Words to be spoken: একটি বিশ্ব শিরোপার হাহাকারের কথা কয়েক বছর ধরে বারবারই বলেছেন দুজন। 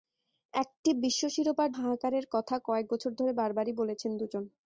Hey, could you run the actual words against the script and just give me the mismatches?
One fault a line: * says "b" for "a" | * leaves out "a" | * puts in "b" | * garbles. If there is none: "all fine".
all fine